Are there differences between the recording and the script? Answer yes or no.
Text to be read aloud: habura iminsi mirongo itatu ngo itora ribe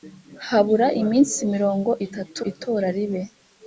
yes